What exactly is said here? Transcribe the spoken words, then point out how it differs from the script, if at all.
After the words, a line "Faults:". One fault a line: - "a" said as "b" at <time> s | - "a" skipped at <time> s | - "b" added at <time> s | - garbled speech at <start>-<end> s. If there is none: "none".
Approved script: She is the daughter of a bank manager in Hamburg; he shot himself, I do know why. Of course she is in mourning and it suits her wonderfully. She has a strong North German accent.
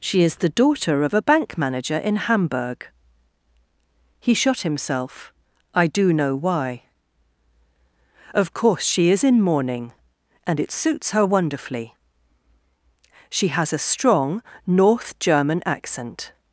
She is the daughter of a bank manager in Hamburg; he shot himself, I do know why. Of course she is in mourning and it suits her wonderfully. She has a strong North German accent.
Faults:
none